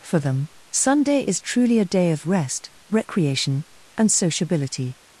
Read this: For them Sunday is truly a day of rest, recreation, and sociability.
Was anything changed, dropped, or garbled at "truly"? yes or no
no